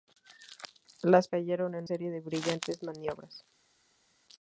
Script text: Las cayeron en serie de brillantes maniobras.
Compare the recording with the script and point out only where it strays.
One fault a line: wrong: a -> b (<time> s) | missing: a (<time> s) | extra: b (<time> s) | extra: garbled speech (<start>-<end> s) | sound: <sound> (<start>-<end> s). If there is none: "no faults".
no faults